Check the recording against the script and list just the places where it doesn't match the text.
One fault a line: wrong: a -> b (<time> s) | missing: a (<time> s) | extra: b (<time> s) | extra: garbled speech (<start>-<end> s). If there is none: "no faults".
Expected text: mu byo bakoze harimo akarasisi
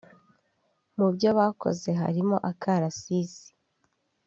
no faults